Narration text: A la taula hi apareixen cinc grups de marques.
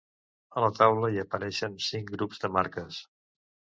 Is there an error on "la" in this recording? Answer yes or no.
no